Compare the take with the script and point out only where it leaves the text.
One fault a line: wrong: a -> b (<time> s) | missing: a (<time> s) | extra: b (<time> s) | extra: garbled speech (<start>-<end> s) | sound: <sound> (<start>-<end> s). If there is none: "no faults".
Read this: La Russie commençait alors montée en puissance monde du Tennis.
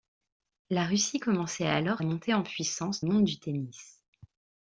no faults